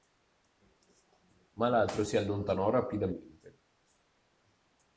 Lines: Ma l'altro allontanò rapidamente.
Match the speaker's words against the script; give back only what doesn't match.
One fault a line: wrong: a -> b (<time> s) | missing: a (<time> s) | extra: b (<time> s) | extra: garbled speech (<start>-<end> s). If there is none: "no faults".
extra: si (2.0 s)